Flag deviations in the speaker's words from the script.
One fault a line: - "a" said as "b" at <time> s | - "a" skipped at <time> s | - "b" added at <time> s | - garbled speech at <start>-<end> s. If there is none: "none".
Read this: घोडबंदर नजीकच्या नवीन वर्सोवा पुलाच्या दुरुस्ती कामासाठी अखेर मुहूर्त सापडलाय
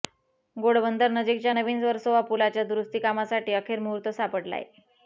none